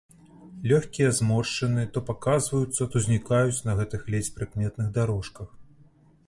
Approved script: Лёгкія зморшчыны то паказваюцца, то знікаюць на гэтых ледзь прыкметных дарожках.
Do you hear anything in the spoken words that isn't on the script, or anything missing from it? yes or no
no